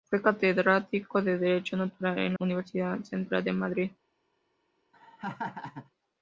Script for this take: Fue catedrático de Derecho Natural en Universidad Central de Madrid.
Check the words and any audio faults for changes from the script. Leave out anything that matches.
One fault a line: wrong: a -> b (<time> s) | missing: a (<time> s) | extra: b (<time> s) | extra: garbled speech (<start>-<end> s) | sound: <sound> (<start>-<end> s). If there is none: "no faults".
sound: laugh (4.9-5.9 s)